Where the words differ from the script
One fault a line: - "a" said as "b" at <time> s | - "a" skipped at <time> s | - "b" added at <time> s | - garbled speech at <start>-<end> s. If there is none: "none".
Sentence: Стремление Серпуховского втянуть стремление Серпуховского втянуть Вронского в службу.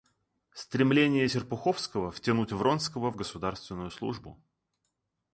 - "стремление Серпуховского втянуть" skipped at 2.5 s
- "государственную" added at 3.1 s